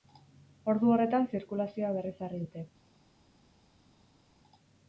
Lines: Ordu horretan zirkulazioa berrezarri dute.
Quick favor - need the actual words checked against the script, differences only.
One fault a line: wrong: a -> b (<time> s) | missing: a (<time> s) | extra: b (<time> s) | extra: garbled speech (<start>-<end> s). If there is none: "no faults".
no faults